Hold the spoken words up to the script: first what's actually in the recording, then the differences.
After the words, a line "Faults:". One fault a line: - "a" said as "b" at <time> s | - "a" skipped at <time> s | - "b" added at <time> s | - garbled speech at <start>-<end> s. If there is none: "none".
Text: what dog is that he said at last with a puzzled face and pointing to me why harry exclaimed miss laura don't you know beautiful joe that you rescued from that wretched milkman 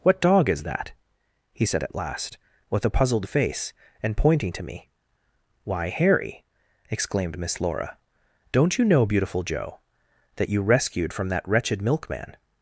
what dog is that he said at last with a puzzled face and pointing to me why harry exclaimed miss laura don't you know beautiful joe that you rescued from that wretched milkman
Faults:
none